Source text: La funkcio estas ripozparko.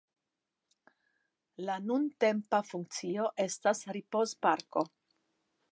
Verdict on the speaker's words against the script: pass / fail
fail